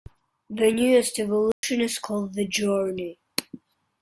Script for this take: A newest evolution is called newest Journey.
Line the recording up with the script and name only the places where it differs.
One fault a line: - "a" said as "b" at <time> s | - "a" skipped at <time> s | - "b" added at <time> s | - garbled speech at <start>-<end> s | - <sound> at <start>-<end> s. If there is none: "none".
- "A" said as "The" at 0.5 s
- dropout at 1.5-1.6 s
- "newest" said as "the" at 2.3 s